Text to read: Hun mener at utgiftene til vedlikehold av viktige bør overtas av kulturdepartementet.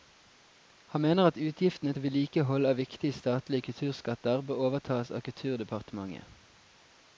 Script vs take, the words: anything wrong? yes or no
yes